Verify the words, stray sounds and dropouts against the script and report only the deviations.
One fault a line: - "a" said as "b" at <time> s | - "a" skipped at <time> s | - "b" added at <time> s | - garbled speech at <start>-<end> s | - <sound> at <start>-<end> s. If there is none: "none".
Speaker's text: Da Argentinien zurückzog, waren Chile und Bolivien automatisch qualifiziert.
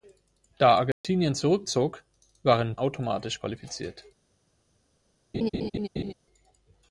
- dropout at 0.9-1.0 s
- "Chile und Bolivien" skipped at 2.8 s
- laugh at 5.3-6.1 s